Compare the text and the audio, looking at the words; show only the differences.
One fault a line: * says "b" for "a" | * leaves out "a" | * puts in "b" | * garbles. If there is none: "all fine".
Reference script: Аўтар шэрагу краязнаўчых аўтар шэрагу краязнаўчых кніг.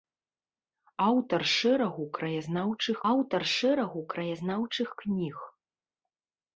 all fine